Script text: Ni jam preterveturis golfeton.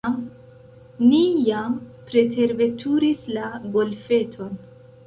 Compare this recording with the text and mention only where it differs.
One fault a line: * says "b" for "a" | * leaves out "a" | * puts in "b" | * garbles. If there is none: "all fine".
* puts in "la"